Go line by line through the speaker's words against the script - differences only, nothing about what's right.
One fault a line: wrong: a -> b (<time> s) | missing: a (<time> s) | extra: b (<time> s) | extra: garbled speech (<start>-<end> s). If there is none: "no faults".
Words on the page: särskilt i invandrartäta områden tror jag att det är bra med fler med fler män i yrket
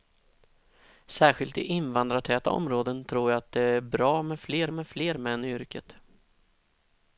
no faults